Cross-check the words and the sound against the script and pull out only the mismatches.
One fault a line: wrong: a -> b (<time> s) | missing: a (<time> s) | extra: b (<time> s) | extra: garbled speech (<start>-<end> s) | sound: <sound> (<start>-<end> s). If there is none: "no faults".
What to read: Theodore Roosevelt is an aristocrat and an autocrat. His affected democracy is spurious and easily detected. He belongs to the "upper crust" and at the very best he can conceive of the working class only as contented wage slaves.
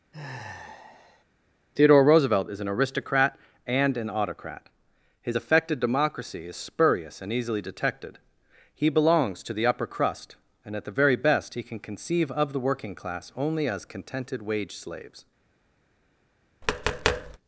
sound: sigh (0.1-1.2 s)
sound: tap (16.6-17.4 s)